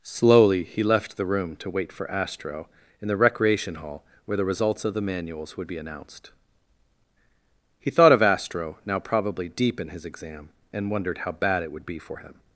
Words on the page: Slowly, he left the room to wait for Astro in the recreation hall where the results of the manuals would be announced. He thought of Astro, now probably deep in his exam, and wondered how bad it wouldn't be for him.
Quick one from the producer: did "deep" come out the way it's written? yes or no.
yes